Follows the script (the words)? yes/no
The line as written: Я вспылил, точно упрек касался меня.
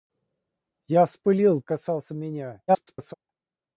no